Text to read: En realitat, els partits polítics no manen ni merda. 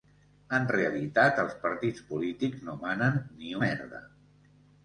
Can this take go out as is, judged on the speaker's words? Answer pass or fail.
pass